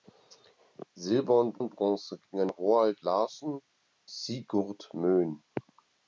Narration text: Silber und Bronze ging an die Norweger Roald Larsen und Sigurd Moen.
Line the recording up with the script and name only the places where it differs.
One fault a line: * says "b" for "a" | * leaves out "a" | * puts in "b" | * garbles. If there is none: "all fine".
* puts in "und"
* leaves out "die Norweger"
* leaves out "und"